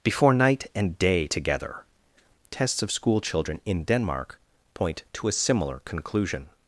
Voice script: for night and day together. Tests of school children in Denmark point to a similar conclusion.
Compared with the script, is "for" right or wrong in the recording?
wrong